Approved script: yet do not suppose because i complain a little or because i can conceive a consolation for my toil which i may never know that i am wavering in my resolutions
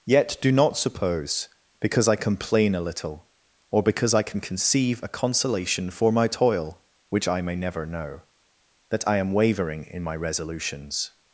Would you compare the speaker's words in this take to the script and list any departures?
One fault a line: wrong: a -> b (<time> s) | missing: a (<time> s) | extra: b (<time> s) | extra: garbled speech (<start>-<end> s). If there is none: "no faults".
no faults